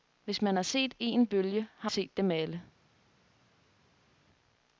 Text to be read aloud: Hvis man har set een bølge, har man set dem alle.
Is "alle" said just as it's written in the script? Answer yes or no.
yes